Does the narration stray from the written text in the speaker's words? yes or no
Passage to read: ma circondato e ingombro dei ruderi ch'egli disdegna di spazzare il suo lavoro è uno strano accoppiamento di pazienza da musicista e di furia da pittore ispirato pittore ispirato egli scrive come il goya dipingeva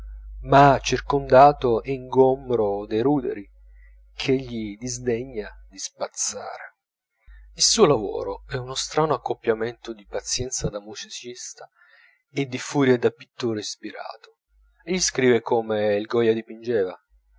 yes